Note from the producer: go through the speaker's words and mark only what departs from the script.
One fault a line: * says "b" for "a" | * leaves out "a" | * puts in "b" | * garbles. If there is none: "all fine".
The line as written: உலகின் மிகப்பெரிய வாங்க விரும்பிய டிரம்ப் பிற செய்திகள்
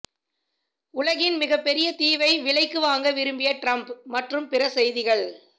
* puts in "தீவை விலைக்கு"
* puts in "மற்றும்"